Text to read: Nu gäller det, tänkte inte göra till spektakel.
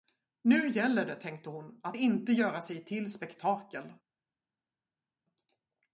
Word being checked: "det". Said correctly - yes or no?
yes